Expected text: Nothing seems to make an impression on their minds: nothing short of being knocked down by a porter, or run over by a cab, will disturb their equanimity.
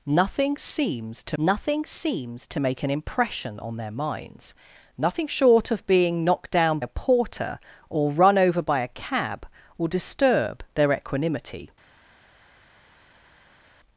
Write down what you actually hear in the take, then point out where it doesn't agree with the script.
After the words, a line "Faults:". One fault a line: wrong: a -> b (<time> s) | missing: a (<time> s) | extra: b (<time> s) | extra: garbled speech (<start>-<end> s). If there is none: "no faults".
Nothing seems to nothing seems to make an impression on their minds: nothing short of being knocked down a porter, or run over by a cab, will disturb their equanimity.
Faults:
extra: nothing seems to (1.4 s)
missing: by (6.8 s)